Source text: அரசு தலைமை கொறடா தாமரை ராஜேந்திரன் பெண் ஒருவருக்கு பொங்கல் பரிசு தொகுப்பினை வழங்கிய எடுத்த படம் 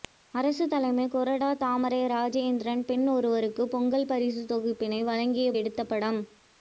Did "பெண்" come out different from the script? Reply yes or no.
no